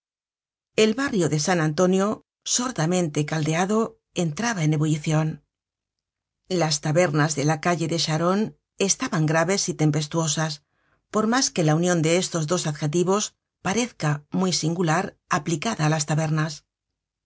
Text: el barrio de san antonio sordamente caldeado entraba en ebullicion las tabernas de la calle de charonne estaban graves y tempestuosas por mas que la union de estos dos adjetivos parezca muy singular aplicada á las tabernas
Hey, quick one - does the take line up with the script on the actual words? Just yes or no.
yes